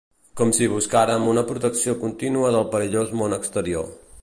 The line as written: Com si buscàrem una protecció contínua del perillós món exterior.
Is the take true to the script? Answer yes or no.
yes